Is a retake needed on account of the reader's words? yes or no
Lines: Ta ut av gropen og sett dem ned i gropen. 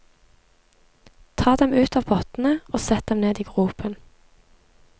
yes